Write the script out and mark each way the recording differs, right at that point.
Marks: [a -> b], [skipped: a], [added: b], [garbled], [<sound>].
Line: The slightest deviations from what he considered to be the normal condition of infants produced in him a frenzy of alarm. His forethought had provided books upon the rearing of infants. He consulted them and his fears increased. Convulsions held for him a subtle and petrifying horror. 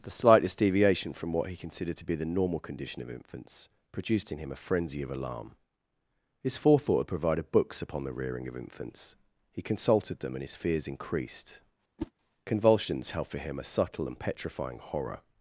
The slightest [deviations -> deviation] from what he considered to be the normal condition of infants produced in him a frenzy of alarm. His forethought had provided books upon the rearing of infants. He consulted them and his fears increased. [whoosh] Convulsions held for him a subtle and petrifying horror.